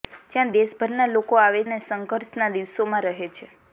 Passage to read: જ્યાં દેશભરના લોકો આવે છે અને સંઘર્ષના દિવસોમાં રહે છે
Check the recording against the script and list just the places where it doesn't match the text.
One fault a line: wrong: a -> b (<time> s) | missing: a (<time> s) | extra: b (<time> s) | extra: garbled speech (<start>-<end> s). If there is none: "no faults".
missing: છે (1.6 s)